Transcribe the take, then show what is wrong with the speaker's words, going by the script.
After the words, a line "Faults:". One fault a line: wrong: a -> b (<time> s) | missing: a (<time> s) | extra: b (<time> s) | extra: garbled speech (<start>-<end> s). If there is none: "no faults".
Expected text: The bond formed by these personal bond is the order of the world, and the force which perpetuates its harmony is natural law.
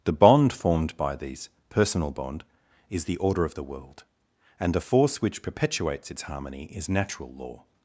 The bond formed by these personal bond is the order of the world, and the force which perpetuates its harmony is natural law.
Faults:
no faults